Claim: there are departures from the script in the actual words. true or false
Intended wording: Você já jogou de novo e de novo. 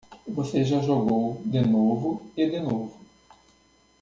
false